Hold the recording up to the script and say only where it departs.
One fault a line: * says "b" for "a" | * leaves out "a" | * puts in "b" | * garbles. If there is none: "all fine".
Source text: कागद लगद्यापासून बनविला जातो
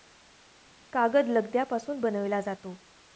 all fine